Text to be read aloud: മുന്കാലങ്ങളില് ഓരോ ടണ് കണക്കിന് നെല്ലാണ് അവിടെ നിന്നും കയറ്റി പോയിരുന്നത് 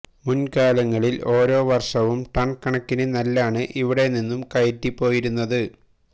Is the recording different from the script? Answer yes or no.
yes